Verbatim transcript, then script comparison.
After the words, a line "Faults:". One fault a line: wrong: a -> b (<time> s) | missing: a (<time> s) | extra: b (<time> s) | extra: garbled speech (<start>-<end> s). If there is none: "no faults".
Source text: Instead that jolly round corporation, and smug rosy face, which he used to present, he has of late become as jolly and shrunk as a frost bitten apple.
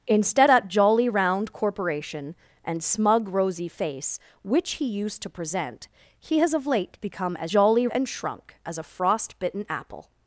Instead that jolly round corporation, and smug rosy face, which he used to present, he has of late become as jolly and shrunk as a frost bitten apple.
Faults:
no faults